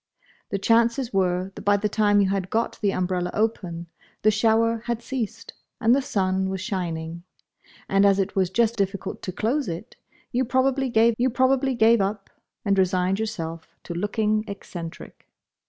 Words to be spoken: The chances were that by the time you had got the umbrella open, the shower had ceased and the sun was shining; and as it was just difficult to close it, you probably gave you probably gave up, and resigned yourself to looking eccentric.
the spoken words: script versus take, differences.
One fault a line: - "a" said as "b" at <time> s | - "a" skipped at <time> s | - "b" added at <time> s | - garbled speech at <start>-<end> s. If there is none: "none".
none